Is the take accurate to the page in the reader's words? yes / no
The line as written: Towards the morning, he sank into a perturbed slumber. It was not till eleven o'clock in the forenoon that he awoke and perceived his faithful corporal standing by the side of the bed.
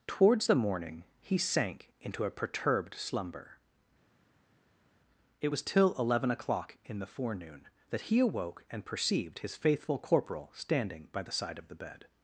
no